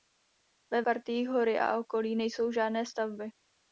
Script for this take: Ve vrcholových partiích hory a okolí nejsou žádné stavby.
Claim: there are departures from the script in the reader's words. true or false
true